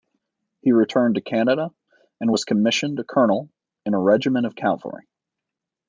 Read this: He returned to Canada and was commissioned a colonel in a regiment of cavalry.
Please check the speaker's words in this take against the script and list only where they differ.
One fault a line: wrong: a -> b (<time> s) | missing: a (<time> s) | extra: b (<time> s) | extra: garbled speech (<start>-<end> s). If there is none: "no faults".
no faults